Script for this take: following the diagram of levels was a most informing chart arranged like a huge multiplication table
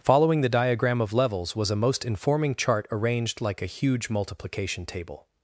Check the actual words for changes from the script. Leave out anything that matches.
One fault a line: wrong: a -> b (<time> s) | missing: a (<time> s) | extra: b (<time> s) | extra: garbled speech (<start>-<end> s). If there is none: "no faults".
no faults